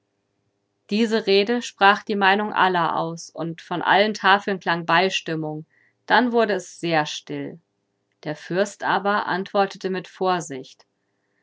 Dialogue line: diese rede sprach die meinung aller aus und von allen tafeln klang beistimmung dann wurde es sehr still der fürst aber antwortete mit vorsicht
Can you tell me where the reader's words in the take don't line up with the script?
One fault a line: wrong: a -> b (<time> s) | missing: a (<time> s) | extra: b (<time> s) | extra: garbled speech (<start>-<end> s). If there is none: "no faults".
no faults